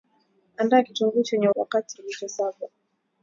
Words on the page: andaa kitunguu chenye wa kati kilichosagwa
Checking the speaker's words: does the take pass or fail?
pass